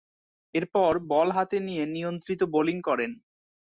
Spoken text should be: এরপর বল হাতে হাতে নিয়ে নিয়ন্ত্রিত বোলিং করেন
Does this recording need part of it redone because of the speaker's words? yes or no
yes